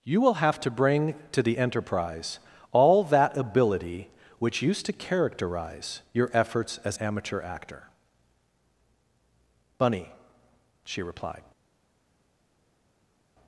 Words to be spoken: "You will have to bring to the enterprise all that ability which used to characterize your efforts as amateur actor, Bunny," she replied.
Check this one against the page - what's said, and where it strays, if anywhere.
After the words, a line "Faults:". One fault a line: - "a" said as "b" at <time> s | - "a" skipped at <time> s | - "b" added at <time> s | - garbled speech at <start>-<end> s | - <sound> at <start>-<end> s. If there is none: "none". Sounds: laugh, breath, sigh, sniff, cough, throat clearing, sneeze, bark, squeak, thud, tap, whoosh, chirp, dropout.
"You will have to bring to the enterprise all that ability which used to characterize your efforts as amateur actor, Bunny," she replied.
Faults:
none